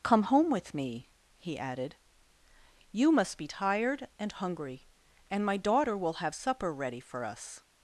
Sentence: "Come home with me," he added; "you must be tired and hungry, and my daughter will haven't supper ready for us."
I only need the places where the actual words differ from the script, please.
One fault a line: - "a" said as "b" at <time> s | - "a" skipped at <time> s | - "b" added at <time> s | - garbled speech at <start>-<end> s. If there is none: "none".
- "haven't" said as "have" at 6.2 s